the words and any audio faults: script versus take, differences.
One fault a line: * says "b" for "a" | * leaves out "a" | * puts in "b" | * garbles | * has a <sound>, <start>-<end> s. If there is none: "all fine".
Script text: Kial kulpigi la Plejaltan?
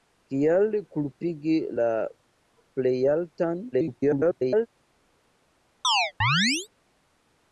* garbles
* has a chirp, 5.8-6.7 s